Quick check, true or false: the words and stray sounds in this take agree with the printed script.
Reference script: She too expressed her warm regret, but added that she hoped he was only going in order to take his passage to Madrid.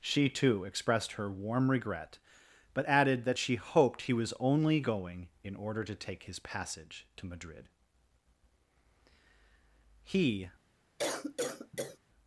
false